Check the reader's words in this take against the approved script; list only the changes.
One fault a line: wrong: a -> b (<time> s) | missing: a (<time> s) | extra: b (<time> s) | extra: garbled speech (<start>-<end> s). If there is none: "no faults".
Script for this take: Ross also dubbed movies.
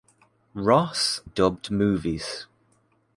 missing: also (1.2 s)